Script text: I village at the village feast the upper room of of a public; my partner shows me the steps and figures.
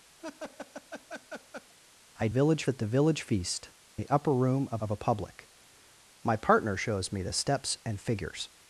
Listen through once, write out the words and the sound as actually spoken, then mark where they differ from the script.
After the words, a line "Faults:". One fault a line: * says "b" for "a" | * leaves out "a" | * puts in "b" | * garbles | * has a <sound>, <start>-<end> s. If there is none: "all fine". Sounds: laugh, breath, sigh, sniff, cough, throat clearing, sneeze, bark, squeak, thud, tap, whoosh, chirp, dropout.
I village at the village feast the upper room of of a public; my partner shows me the steps and figures.
Faults:
* has a laugh, 0.2-1.7 s